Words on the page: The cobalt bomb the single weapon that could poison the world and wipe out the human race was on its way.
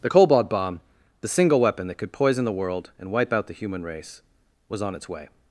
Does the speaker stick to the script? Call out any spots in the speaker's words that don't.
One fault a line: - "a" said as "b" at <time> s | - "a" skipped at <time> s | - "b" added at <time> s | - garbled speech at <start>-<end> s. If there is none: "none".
none